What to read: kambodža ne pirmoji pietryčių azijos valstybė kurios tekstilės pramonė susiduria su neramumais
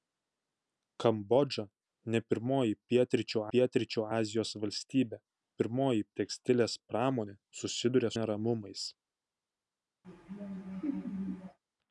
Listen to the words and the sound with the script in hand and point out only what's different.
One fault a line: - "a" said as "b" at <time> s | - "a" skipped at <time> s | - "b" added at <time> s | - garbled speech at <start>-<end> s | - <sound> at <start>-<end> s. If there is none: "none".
- "pietryčių" added at 3.5 s
- "kurios" said as "pirmoji" at 5.6 s
- "su" skipped at 8.1 s
- laugh at 10.0-11.6 s